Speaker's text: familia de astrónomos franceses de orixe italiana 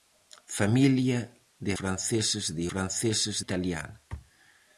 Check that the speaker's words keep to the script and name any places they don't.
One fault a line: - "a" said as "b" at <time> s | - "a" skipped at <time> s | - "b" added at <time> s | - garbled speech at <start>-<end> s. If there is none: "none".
- "astrónomos" skipped at 1.7 s
- "orixe" said as "franceses" at 2.7 s